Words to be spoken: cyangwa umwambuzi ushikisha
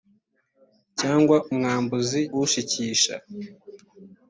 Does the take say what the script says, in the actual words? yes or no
yes